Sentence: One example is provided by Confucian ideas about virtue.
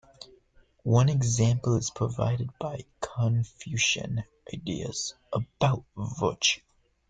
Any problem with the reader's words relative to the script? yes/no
no